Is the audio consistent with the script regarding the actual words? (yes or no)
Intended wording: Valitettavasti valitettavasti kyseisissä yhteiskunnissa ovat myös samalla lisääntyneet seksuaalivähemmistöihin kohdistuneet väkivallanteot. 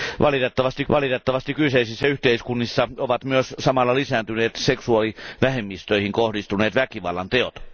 yes